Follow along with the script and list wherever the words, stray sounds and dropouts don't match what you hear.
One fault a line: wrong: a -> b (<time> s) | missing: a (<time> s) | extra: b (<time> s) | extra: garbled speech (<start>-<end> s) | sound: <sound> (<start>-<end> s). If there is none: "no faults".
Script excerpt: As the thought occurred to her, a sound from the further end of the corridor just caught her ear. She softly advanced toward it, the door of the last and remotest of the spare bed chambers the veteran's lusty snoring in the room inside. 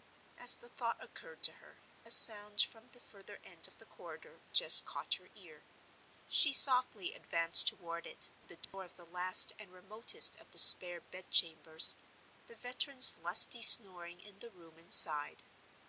sound: dropout (8.6-8.7 s)